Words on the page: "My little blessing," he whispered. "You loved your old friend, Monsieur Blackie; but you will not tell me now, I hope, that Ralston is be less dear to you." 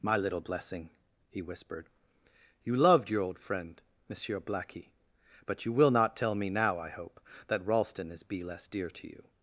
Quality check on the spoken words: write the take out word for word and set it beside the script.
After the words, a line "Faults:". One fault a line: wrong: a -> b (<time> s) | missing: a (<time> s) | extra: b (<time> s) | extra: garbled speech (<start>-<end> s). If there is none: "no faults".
"My little blessing," he whispered. "You loved your old friend, Monsieur Blackie; but you will not tell me now, I hope, that Ralston is be less dear to you."
Faults:
no faults